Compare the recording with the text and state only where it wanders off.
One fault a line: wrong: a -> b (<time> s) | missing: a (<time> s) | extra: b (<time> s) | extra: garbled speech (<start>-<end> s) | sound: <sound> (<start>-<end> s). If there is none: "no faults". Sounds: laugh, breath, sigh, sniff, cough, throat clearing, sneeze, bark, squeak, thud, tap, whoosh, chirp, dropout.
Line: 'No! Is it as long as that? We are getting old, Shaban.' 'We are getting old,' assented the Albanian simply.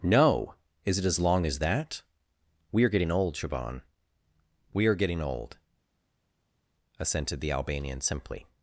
no faults